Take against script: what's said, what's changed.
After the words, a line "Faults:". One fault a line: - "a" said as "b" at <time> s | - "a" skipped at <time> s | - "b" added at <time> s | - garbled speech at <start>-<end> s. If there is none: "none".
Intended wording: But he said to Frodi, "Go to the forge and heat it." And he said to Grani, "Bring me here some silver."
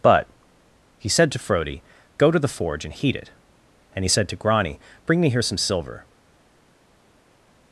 But he said to Frodi, "Go to the forge and heat it." And he said to Grani, "Bring me here some silver."
Faults:
none